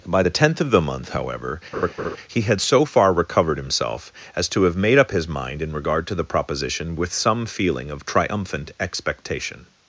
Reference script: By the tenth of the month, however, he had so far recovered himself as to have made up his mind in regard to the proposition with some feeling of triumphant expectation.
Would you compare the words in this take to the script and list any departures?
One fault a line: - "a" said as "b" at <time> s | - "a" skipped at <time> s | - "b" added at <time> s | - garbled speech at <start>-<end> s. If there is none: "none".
none